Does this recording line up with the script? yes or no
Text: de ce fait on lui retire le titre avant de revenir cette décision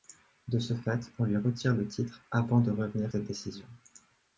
yes